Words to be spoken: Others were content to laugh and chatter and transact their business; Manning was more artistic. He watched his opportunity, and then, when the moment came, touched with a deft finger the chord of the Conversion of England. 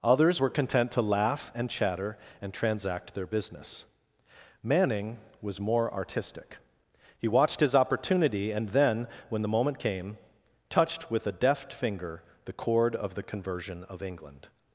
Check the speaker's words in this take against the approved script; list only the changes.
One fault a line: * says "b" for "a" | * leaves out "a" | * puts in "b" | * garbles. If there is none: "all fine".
all fine